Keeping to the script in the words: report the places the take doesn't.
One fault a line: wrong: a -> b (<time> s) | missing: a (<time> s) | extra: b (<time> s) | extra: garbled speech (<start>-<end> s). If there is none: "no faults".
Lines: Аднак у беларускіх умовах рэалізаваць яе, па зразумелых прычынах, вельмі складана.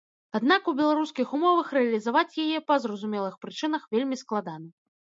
no faults